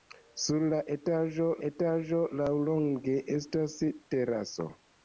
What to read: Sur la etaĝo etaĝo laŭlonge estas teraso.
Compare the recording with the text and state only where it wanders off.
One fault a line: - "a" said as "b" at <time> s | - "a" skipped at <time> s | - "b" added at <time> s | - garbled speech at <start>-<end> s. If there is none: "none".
none